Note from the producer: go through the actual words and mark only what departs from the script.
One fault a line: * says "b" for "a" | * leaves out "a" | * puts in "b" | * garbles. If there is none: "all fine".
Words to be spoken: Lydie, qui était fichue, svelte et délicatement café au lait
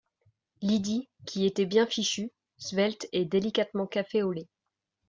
* puts in "bien"